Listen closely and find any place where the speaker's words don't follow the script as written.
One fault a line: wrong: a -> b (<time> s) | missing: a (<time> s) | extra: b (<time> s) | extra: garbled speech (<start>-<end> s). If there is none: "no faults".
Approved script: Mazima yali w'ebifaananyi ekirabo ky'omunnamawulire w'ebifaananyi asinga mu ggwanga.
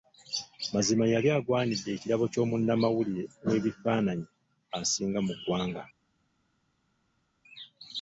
wrong: w'ebifaananyi -> agwanidde (1.4 s)